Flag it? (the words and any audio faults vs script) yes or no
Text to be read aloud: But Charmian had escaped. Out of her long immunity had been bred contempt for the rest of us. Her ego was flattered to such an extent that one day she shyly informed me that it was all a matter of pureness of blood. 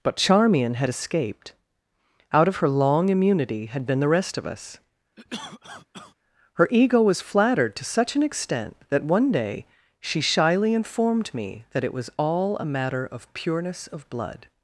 yes